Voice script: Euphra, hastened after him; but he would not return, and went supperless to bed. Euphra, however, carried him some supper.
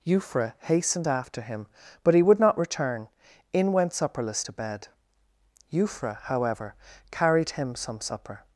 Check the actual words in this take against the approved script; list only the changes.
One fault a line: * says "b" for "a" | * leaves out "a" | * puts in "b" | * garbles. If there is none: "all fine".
* says "in" for "and"